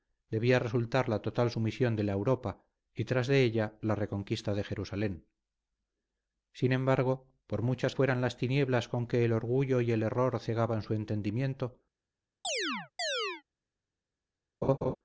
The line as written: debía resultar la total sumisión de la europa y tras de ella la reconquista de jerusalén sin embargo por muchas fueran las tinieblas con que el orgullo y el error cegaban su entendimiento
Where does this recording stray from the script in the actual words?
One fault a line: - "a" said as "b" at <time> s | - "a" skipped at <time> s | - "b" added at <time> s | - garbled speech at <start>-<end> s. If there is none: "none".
none